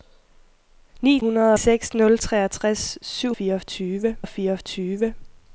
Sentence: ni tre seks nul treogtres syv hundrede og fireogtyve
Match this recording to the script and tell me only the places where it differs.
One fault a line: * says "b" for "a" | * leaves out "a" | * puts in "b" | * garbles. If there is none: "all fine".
* says "hundrede" for "tre"
* says "fireogtyve" for "hundrede"